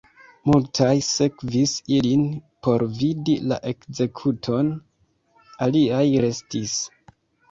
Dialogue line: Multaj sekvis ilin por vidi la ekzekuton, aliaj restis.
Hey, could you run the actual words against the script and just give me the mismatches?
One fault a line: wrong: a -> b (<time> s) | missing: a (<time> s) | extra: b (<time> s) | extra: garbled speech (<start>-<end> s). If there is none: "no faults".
no faults